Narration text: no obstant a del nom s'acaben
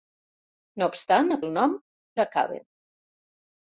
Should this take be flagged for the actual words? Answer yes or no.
no